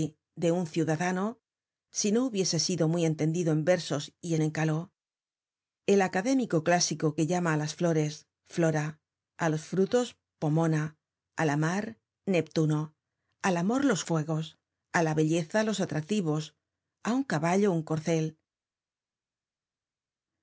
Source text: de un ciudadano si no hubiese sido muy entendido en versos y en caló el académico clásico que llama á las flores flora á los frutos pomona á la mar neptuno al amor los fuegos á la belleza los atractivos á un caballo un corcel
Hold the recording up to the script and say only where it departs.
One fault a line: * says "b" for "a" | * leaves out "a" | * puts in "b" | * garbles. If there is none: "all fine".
all fine